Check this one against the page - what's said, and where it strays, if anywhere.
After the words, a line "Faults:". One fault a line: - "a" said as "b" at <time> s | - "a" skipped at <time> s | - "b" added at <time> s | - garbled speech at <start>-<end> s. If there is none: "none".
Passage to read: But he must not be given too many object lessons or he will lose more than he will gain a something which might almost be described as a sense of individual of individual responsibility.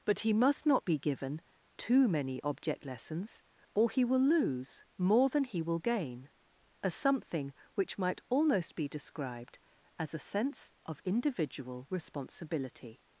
But he must not be given too many object lessons or he will lose more than he will gain a something which might almost be described as a sense of individual responsibility.
Faults:
- "of individual" skipped at 11.8 s